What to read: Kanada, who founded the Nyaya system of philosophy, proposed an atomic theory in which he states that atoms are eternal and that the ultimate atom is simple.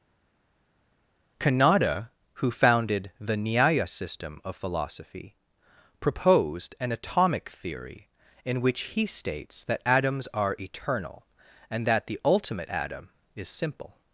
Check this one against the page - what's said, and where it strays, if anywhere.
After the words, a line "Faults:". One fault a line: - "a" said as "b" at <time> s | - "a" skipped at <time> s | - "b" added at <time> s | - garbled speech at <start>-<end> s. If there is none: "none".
Kanada, who founded the Nyaya system of philosophy, proposed an atomic theory in which he states that atoms are eternal and that the ultimate atom is simple.
Faults:
none